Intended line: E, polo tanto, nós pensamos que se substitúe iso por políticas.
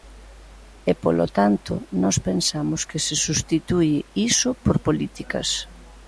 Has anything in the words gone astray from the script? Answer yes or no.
no